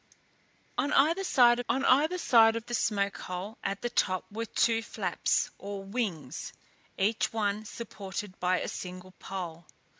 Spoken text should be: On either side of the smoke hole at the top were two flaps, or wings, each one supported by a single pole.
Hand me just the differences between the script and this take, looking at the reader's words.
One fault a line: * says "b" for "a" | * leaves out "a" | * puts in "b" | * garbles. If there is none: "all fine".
* puts in "on either side"